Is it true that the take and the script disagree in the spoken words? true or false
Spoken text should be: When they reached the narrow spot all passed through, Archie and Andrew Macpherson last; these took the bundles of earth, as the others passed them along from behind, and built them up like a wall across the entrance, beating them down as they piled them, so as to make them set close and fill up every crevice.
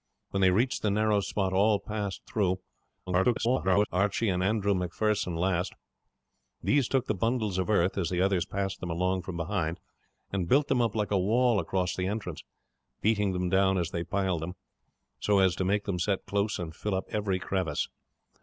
true